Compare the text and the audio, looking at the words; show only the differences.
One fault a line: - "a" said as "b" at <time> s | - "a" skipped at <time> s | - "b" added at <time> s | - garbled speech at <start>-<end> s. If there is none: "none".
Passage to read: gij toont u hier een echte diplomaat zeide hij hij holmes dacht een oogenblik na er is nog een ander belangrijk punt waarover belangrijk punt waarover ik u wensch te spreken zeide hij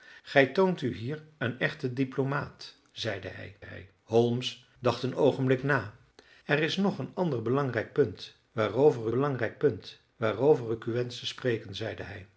none